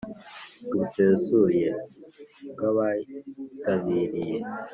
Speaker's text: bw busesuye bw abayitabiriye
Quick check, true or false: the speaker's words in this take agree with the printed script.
true